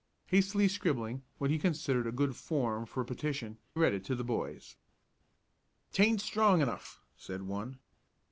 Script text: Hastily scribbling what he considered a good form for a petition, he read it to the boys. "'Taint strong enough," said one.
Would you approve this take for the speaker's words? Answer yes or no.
no